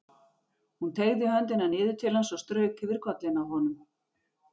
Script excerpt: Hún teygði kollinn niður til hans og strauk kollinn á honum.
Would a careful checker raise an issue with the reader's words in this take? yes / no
yes